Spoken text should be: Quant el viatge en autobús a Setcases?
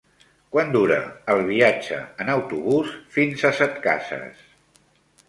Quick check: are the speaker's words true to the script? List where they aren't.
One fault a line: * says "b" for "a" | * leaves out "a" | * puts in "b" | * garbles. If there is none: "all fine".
* puts in "dura"
* puts in "fins"